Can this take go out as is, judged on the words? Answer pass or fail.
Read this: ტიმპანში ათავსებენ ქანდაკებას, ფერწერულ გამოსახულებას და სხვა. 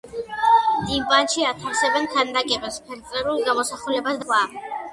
fail